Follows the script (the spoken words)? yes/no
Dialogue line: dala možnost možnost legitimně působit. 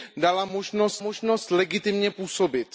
yes